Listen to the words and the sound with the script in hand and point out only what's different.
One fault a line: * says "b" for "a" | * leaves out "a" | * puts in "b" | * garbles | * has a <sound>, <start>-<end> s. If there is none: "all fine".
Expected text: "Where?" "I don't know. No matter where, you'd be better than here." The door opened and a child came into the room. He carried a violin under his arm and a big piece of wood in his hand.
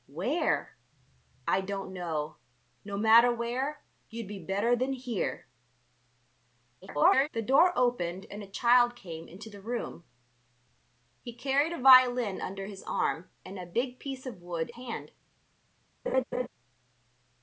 * garbles
* leaves out "in his"
* has a laugh, 16.1-16.5 s